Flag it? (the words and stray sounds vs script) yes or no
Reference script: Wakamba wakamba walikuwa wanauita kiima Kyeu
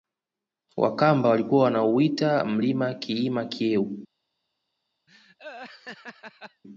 yes